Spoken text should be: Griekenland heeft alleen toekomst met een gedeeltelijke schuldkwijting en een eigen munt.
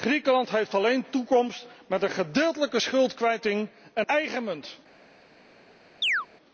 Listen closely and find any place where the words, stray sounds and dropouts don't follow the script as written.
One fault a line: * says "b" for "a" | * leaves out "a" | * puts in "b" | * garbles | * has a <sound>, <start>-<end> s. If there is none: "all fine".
* leaves out "een"
* has a chirp, 6.0-6.3 s